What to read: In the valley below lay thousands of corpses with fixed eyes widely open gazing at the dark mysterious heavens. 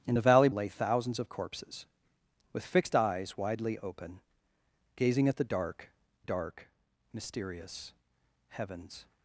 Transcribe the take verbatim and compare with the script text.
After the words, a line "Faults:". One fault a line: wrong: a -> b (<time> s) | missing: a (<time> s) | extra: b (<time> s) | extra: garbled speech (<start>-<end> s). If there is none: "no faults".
In the valley lay thousands of corpses with fixed eyes widely open gazing at the dark dark mysterious heavens.
Faults:
missing: below (0.5 s)
extra: dark (6.2 s)